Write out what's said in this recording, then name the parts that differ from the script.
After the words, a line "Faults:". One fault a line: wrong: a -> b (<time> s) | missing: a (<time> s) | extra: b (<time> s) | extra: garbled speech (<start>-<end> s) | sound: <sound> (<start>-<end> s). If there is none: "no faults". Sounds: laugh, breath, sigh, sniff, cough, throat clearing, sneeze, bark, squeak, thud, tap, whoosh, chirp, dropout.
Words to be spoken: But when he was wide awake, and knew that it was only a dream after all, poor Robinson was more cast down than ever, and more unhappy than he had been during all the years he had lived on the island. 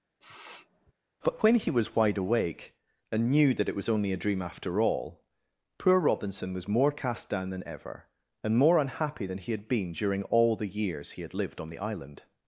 But when he was wide awake, and knew that it was only a dream after all, poor Robinson was more cast down than ever, and more unhappy than he had been during all the years he had lived on the island.
Faults:
sound: sniff (0.2-0.9 s)